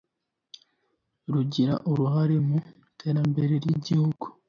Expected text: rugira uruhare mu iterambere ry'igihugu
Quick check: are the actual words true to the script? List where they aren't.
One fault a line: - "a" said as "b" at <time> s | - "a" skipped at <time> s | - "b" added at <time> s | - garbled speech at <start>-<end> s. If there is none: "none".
none